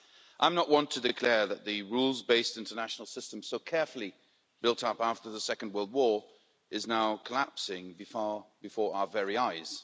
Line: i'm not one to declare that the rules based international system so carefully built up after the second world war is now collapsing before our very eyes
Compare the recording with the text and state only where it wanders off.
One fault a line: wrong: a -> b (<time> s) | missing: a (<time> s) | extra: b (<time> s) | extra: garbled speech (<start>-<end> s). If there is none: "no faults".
no faults